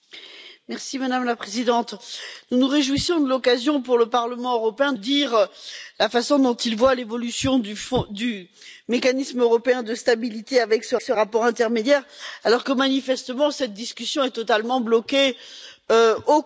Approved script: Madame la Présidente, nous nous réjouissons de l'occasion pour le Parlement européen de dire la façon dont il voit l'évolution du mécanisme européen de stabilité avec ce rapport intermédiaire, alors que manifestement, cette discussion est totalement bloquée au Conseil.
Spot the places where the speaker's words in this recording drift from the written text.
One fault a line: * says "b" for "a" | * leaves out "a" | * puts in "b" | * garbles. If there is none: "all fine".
* leaves out "de"
* puts in "ce"